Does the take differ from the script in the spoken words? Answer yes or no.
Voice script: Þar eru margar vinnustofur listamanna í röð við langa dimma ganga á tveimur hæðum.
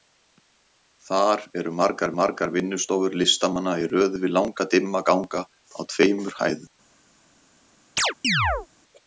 yes